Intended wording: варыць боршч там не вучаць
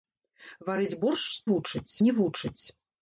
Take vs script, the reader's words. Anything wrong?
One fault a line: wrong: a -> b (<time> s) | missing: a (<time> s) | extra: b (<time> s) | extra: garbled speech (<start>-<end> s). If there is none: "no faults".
wrong: там -> вучаць (1.5 s)